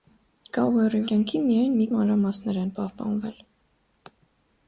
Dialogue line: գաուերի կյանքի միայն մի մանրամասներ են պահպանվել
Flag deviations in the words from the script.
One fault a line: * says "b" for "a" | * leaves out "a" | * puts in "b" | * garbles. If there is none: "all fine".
all fine